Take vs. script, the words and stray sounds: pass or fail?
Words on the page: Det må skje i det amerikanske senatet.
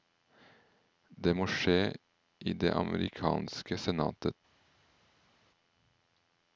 pass